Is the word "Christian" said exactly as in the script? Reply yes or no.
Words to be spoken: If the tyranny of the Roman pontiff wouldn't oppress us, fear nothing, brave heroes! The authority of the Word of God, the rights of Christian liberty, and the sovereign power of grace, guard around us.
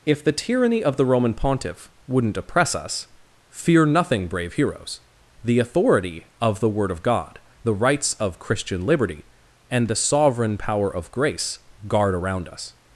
yes